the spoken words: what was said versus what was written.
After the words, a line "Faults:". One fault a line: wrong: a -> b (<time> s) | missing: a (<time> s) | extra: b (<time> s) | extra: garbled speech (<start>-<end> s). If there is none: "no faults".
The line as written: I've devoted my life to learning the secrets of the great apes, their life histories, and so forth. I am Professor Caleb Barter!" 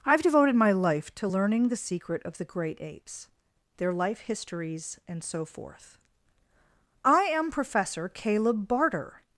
I've devoted my life to learning the secret of the great apes, their life histories, and so forth. I am Professor Caleb Barter!"
Faults:
wrong: secrets -> secret (1.8 s)